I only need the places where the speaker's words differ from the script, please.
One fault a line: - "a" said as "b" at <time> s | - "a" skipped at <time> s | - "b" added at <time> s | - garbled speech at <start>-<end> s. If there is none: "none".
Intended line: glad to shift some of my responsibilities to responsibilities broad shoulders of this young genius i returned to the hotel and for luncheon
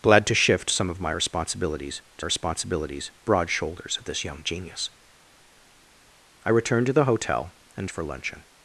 none